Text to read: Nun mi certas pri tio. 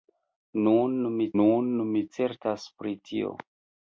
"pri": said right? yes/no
yes